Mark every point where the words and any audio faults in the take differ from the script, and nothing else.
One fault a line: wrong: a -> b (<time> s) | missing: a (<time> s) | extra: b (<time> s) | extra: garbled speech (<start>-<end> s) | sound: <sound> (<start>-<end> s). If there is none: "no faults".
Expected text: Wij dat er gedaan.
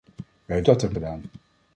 no faults